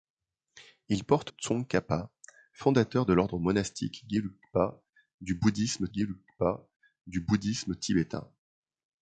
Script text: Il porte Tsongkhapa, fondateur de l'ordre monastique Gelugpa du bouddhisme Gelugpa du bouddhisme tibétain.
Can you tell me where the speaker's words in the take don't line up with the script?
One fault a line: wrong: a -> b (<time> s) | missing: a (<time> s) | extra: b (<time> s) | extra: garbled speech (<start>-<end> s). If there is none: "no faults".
no faults